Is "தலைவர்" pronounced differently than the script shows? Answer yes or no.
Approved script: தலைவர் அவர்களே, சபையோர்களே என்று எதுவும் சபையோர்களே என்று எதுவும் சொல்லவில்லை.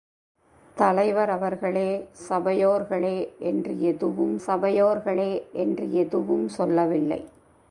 no